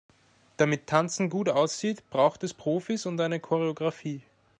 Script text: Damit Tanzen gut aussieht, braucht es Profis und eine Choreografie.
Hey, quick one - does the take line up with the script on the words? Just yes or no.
yes